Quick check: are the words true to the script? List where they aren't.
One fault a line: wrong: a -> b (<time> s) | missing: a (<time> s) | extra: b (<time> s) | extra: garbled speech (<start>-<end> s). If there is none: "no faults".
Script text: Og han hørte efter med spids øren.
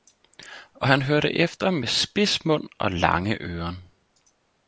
extra: mund og lange (2.4 s)